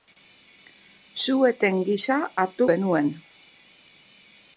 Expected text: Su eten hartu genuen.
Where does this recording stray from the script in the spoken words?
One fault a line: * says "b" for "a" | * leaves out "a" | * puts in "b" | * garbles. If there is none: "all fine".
* puts in "gisa"